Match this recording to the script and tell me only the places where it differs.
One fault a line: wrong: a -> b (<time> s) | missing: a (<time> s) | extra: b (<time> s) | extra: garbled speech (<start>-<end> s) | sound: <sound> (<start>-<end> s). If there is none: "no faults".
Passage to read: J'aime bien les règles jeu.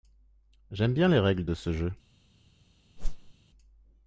extra: de ce (1.4 s)
sound: whoosh (3.0-3.3 s)